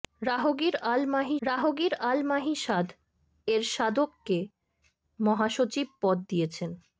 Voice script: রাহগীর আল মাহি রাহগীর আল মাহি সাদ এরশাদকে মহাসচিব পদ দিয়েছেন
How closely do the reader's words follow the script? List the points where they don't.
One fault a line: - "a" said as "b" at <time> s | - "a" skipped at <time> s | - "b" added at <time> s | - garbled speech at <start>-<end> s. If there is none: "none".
none